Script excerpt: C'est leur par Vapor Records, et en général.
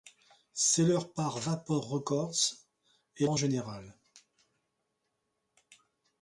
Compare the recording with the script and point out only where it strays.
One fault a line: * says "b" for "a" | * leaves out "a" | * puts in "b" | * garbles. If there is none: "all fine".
all fine